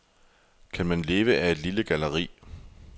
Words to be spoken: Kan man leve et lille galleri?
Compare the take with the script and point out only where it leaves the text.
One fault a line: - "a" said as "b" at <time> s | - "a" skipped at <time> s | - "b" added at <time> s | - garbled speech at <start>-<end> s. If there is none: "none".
- "af" added at 1.4 s